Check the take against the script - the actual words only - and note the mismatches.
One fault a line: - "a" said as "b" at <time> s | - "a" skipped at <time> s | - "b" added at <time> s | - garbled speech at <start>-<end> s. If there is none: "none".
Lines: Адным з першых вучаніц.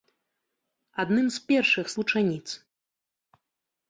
none